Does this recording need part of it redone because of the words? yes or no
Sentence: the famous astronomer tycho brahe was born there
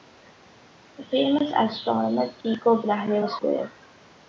yes